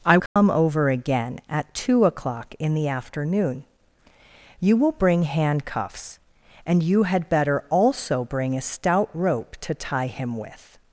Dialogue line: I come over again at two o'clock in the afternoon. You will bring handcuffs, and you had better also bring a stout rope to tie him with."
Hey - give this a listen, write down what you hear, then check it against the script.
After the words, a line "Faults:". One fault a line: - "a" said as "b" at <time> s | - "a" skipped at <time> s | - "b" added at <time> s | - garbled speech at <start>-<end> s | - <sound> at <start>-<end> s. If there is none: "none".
I come over again at two o'clock in the afternoon. You will bring handcuffs, and you had better also bring a stout rope to tie him with."
Faults:
- dropout at 0.3-0.4 s